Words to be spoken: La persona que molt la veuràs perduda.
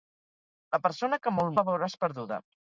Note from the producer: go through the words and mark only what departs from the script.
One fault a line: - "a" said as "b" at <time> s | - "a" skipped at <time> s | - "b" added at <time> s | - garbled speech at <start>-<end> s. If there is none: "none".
none